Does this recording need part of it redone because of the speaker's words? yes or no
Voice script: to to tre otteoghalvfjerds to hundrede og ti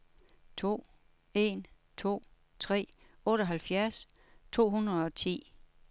yes